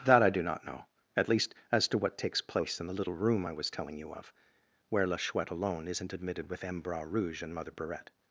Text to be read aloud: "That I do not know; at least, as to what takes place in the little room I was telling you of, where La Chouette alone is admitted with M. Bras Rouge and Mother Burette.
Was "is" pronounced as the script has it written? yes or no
no